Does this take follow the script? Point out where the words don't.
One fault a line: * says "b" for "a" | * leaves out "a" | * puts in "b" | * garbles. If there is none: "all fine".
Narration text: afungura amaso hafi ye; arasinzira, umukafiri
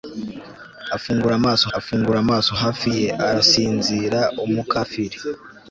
* puts in "afungura amaso"